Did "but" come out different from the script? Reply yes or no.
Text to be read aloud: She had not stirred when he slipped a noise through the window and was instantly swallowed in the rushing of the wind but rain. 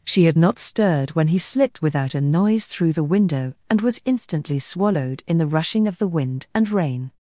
yes